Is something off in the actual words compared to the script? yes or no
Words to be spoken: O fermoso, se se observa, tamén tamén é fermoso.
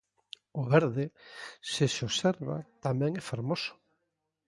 yes